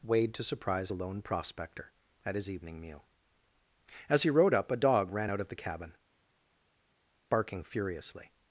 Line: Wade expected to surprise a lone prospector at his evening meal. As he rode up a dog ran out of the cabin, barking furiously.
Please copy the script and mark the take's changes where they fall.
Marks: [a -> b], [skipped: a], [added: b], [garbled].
Wade [skipped: expected] to surprise a lone prospector at his evening meal. As he rode up a dog ran out of the cabin, barking furiously.